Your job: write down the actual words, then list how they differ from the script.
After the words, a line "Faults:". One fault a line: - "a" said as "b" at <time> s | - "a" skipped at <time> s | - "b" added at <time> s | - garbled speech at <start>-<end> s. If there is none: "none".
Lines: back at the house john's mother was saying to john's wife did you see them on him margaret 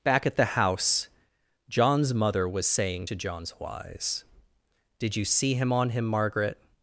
back at the house john's mother was saying to john's wise did you see him on him margaret
Faults:
- "wife" said as "wise" at 3.6 s
- "them" said as "him" at 5.5 s